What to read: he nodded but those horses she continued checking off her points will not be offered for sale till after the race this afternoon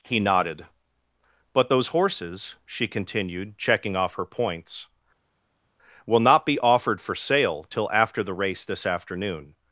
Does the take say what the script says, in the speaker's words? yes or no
yes